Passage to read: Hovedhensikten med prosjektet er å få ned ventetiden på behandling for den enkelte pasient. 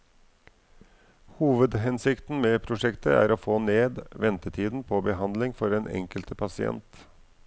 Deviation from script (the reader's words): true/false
false